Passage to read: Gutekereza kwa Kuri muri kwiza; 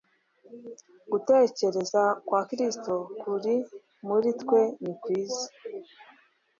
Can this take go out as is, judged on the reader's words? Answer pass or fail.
fail